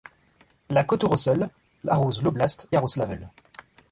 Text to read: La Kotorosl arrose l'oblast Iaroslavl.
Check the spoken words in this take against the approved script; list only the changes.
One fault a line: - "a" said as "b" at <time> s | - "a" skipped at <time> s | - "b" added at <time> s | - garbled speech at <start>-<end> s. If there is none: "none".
none